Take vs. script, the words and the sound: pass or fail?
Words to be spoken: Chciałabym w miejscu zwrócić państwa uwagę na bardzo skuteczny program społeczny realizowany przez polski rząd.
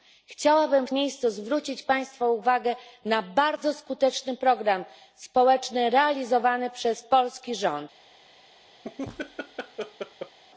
fail